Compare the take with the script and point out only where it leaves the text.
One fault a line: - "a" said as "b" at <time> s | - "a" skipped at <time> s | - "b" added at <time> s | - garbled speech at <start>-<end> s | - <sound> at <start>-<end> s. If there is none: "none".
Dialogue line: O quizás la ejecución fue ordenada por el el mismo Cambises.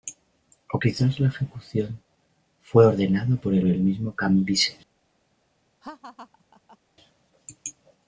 - laugh at 5.8-6.8 s